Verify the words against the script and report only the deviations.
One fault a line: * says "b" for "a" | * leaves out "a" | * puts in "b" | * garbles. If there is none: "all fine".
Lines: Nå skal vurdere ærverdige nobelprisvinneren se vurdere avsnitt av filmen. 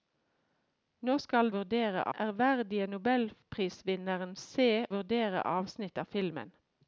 all fine